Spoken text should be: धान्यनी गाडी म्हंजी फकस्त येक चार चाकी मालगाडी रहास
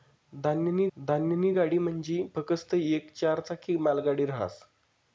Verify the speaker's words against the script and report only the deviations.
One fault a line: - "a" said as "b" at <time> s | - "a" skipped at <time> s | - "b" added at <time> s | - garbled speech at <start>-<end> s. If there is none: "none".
- "धान्यनी" added at 1.0 s